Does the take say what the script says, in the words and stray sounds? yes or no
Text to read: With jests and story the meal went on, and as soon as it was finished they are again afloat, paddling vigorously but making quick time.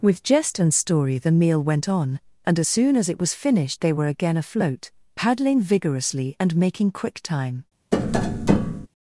no